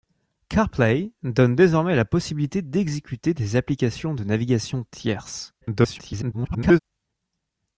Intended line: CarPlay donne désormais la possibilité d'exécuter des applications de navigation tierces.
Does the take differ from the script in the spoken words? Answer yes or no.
yes